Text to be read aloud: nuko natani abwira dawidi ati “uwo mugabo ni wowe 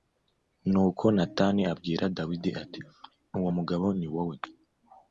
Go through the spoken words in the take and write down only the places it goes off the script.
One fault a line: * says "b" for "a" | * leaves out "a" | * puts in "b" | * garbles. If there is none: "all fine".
all fine